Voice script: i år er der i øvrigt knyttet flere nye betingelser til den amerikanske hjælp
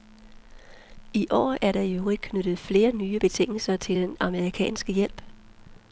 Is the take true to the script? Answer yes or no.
yes